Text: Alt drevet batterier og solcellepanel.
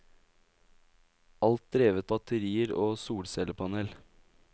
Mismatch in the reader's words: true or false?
false